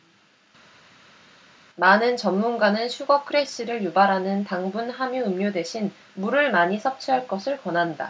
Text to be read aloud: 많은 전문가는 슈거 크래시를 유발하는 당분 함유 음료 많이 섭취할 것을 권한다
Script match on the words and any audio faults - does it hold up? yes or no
no